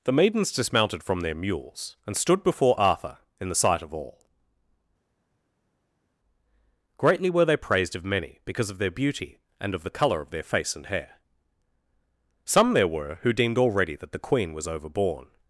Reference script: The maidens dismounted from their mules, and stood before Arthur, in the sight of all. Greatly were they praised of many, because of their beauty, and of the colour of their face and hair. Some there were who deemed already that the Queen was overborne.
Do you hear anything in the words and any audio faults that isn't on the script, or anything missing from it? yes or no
no